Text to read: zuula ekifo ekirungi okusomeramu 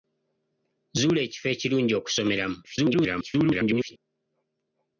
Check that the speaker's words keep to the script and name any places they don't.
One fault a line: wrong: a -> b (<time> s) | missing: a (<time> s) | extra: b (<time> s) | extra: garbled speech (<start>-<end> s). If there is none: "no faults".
extra: garbled speech (2.6-4.0 s)